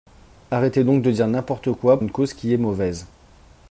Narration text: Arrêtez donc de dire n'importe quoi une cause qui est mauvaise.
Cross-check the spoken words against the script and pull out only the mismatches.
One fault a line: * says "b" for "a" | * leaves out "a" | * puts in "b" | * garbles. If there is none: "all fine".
all fine